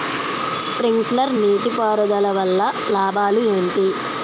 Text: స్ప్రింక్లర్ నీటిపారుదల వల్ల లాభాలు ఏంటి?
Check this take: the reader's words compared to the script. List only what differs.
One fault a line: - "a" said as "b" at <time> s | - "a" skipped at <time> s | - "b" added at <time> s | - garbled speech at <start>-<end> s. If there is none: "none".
none